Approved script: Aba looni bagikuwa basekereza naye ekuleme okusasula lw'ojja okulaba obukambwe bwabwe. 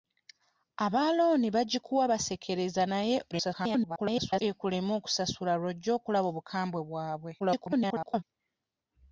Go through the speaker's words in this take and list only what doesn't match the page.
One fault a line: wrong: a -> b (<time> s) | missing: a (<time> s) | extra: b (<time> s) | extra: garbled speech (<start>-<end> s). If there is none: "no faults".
extra: garbled speech (3.3-4.4 s)
extra: garbled speech (7.4-8.2 s)